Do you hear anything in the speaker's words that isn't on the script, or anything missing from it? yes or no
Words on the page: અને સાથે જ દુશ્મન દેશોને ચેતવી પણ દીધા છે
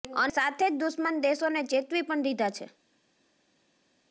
no